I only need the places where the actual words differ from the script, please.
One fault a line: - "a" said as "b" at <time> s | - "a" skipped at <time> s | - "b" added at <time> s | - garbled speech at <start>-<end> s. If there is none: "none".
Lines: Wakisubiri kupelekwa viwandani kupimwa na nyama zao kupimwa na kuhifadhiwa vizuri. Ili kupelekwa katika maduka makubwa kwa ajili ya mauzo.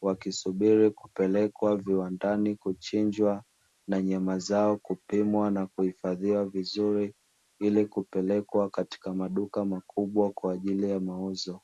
- "kupimwa" said as "kuchinjwa" at 2.5 s